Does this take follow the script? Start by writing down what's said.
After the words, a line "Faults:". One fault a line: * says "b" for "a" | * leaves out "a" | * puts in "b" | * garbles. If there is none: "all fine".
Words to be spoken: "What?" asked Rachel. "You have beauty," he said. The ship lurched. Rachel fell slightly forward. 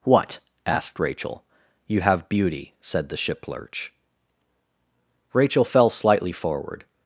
"What?" asked Rachel. "You have beauty," said. The ship lurch. Rachel fell slightly forward.
Faults:
* leaves out "he"
* says "lurch" for "lurched"